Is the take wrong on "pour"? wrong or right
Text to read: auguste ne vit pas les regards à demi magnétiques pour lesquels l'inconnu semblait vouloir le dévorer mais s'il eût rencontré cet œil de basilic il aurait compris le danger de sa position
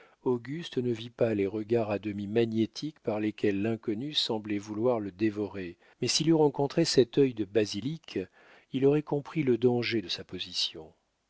wrong